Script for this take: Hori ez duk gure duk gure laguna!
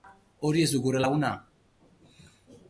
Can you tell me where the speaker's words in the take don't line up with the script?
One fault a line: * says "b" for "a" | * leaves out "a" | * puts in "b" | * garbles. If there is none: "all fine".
* leaves out "duk gure"